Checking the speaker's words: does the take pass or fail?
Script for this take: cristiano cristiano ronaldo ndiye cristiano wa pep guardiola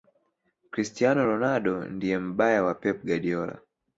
fail